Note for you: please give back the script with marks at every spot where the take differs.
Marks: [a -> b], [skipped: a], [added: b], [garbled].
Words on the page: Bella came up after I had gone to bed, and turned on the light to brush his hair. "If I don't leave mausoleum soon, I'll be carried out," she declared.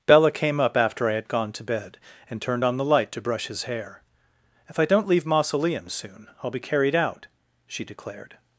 Bella came up after I had gone to bed, and turned on the light to brush his hair. "If I don't leave mausoleum soon, I'll be carried out," she declared.